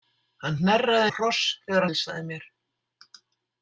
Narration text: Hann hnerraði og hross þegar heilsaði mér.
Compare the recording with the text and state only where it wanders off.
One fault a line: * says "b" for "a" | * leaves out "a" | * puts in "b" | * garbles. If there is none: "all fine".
all fine